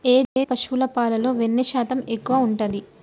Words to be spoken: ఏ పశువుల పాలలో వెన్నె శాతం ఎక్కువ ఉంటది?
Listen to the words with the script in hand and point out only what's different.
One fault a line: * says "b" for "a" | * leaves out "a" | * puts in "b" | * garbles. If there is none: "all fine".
all fine